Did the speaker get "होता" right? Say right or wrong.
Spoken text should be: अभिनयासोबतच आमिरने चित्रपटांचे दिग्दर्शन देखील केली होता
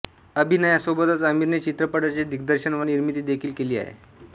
wrong